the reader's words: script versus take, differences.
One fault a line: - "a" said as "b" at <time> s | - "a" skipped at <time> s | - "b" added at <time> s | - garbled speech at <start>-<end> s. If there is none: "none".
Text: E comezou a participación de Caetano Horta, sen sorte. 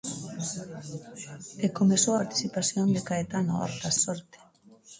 - "a" skipped at 2.1 s
- "sen" skipped at 3.9 s